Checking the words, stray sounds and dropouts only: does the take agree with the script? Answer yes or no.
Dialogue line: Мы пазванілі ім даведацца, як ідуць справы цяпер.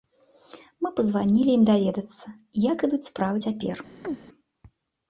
no